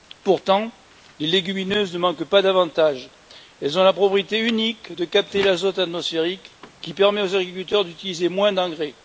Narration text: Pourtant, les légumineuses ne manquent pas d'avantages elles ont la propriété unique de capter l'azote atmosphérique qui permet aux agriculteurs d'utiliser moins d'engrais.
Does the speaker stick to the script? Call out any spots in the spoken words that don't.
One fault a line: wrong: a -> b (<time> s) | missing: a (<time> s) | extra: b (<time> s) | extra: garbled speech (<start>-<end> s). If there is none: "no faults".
no faults